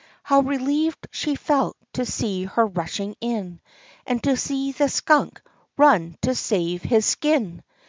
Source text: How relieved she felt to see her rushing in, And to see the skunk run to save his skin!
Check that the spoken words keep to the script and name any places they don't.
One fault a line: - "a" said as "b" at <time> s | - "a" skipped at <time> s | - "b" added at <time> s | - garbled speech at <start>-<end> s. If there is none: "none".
none